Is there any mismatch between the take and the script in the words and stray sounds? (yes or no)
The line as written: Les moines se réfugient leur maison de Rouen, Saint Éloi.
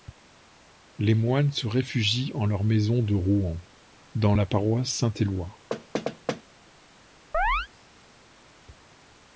yes